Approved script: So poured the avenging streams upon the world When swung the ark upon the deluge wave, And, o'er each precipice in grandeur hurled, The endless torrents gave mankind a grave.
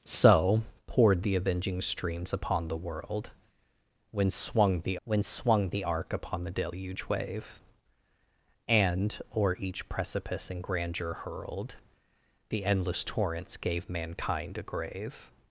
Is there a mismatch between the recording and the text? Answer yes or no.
yes